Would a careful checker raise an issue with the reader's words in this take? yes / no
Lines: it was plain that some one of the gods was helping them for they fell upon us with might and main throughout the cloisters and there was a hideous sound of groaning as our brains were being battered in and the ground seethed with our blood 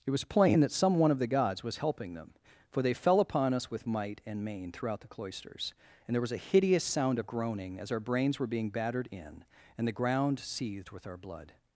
no